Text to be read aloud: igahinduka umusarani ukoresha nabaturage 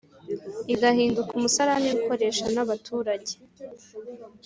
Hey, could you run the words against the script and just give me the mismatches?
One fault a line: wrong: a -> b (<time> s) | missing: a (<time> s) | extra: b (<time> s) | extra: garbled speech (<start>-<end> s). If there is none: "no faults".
no faults